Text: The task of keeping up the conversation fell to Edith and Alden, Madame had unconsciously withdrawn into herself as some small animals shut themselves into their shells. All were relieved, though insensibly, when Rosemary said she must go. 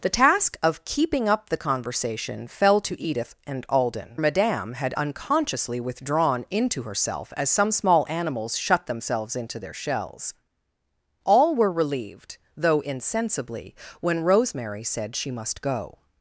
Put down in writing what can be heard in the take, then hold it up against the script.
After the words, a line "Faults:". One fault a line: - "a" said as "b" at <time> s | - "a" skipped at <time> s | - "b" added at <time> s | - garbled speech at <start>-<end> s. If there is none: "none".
The task of keeping up the conversation fell to Edith and Alden, Madame had unconsciously withdrawn into herself as some small animals shut themselves into their shells. All were relieved, though insensibly, when Rosemary said she must go.
Faults:
none